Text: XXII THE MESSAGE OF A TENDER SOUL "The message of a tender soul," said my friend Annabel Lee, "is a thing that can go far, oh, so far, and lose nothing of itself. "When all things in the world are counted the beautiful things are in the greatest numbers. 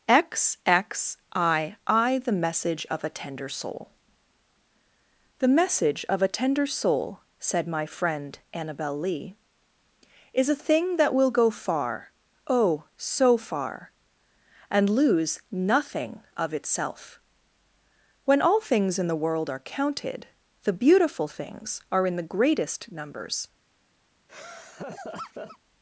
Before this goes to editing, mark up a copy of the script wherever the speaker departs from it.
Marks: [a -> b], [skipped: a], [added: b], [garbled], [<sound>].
XXII THE MESSAGE OF A TENDER SOUL "The message of a tender soul," said my friend Annabel Lee, "is a thing that [can -> will] go far, oh, so far, and lose nothing of itself. "When all things in the world are counted the beautiful things are in the greatest numbers. [laugh]